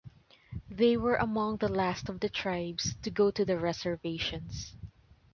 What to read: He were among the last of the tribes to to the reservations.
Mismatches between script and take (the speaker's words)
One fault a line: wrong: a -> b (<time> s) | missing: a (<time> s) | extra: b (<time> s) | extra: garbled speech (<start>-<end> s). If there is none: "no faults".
wrong: He -> They (0.7 s)
extra: go (3.1 s)